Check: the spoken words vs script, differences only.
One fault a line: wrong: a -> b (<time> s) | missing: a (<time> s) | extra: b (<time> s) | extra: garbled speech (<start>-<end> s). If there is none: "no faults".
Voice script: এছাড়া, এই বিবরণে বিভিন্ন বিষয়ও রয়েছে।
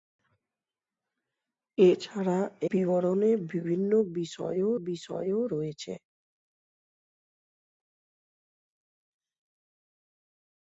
missing: এই (2.4 s)
extra: বিষয়ও (4.8 s)